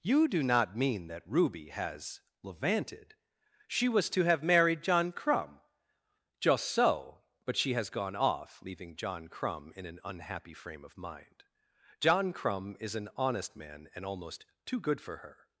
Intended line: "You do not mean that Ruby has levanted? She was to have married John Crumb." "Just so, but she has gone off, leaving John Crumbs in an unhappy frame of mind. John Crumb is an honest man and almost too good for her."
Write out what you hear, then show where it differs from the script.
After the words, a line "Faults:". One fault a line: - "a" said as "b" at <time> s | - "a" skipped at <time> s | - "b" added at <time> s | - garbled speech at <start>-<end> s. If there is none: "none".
"You do not mean that Ruby has levanted? She was to have married John Crumb." "Just so, but she has gone off, leaving John Crumb in an unhappy frame of mind. John Crumb is an honest man and almost too good for her."
Faults:
- "Crumbs" said as "Crumb" at 9.3 s